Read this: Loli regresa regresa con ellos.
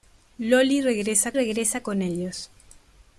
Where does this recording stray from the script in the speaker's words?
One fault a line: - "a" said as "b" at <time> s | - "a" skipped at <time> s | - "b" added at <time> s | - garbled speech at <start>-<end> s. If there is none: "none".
none